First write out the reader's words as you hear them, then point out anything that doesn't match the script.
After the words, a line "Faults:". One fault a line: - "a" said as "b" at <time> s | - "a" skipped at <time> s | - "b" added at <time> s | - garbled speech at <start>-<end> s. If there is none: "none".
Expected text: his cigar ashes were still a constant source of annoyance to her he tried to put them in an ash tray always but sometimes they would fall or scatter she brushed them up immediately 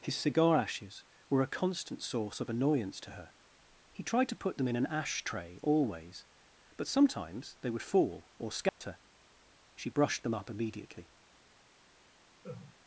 his cigar ashes were a constant source of annoyance to her he tried to put them in an ash tray always but sometimes they would fall or scatter she brushed them up immediately
Faults:
- "still" skipped at 1.4 s